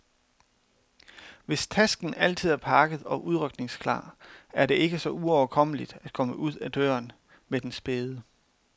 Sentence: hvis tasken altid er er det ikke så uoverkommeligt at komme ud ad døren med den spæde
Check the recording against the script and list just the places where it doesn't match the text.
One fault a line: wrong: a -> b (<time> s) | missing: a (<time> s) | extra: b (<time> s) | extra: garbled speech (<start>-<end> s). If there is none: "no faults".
extra: pakket og udrykningsklar (2.6 s)